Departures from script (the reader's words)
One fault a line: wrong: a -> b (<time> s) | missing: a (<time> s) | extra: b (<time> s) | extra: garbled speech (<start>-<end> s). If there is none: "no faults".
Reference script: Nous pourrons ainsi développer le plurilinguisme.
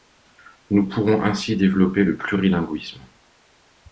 no faults